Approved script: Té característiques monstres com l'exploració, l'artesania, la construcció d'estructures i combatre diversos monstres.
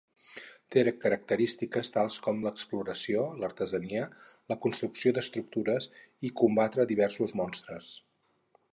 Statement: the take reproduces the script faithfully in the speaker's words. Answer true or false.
false